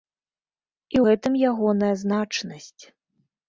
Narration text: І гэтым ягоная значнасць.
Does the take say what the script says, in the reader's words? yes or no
yes